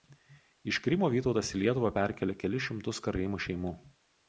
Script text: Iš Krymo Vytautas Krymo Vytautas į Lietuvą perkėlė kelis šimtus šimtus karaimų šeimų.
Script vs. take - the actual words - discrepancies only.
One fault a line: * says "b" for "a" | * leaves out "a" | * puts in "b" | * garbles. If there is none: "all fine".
* leaves out "Krymo Vytautas"
* leaves out "šimtus"